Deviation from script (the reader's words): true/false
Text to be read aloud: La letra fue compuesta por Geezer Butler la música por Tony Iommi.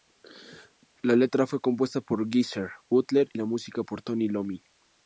false